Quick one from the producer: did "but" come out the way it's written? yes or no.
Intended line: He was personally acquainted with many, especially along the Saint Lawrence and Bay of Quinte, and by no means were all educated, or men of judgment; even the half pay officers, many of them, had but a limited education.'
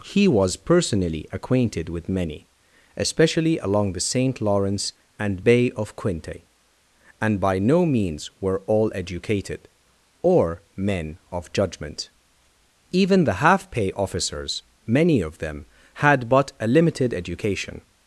yes